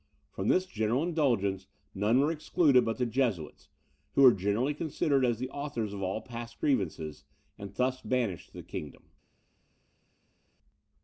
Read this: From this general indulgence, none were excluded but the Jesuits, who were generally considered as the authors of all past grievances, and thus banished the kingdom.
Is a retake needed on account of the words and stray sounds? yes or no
no